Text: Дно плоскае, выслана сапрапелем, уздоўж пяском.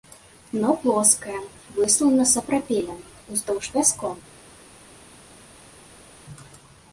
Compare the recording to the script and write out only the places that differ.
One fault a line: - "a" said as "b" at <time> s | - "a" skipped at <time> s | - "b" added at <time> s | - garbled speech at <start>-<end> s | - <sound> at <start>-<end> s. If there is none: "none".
none